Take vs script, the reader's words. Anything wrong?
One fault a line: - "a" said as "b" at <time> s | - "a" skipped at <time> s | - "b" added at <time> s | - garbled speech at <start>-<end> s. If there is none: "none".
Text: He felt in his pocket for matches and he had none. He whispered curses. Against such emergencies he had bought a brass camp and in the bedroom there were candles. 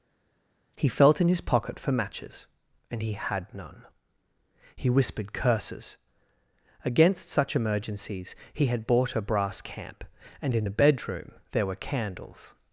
none